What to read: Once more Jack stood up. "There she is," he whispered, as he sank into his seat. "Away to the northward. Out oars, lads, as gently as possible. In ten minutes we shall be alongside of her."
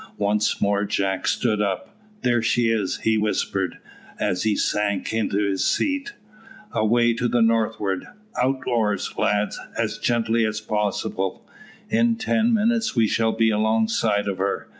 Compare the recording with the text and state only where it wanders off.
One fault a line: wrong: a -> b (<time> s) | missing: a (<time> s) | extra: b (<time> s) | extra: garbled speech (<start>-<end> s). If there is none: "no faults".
no faults